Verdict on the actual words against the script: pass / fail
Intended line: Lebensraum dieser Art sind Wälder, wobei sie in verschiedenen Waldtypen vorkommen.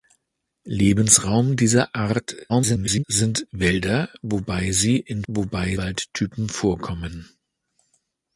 fail